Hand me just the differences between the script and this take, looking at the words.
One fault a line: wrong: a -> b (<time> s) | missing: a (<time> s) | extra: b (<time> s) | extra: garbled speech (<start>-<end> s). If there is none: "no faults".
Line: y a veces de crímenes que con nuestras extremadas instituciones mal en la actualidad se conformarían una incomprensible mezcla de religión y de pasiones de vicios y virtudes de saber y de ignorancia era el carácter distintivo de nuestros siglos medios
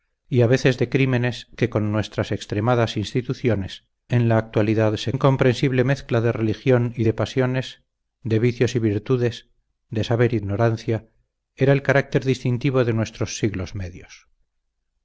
missing: mal (3.9 s)
missing: conformarían una (5.1 s)
missing: de (10.4 s)